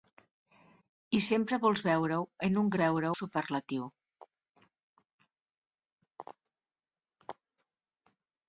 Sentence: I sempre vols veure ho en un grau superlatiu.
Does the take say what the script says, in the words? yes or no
no